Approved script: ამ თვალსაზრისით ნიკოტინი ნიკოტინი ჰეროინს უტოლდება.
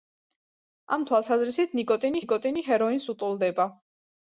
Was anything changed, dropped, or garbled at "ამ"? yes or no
no